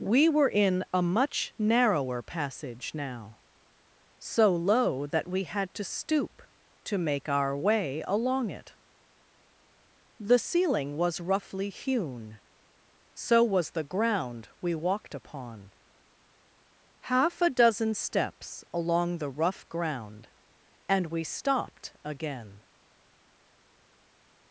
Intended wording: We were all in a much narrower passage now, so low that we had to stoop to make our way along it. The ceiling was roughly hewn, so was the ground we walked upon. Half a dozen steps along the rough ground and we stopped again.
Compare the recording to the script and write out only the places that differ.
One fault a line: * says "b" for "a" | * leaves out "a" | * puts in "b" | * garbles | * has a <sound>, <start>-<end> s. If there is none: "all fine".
* leaves out "all"